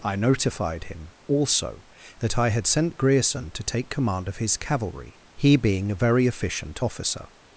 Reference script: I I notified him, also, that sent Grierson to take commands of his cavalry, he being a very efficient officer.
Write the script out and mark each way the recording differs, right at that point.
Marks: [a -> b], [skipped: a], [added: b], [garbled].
I [skipped: I] notified him, also, that [added: I had] sent Grierson to take [commands -> command] of his cavalry, he being a very efficient officer.